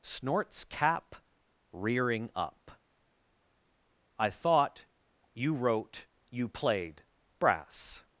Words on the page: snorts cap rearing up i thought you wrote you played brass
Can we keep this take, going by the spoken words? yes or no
yes